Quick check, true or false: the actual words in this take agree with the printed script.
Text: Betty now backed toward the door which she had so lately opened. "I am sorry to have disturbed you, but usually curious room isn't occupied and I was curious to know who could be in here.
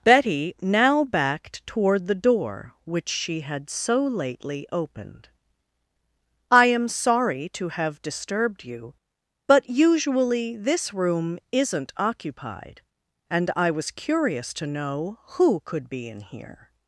false